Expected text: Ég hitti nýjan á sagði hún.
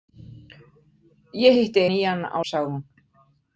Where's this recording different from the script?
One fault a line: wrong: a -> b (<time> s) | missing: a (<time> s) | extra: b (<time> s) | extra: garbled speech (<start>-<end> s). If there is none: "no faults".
no faults